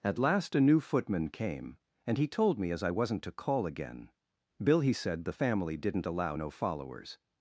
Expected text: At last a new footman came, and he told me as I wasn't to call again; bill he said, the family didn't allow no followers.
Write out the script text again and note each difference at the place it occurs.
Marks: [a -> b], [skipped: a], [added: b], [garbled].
At last a new footman came, and he told me as I wasn't to call again; bill he said, the family didn't allow no followers.